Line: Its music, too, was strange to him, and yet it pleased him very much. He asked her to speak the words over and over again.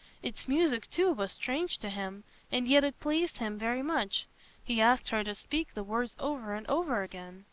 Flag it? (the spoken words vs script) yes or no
no